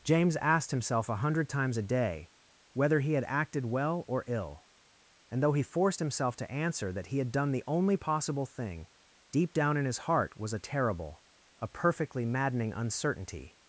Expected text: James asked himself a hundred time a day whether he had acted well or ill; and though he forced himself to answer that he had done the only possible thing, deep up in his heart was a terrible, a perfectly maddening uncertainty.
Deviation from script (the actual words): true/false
true